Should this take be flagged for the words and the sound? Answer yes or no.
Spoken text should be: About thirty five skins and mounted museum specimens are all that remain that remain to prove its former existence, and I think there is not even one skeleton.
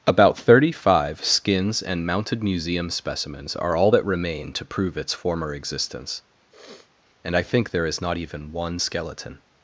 yes